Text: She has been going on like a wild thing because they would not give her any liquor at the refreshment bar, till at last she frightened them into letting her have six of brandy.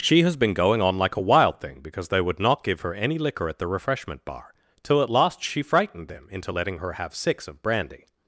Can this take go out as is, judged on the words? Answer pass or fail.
pass